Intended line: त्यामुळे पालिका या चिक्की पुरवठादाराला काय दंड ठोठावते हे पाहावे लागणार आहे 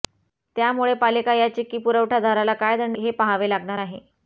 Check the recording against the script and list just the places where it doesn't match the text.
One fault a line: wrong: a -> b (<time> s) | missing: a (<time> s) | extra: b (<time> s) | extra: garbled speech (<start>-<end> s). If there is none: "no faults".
missing: ठोठावते (3.0 s)